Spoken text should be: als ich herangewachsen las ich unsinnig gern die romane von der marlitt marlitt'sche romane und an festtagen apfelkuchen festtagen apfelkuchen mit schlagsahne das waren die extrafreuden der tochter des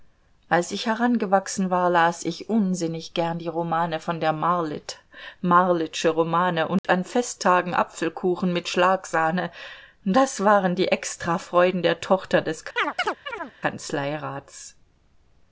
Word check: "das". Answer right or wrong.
right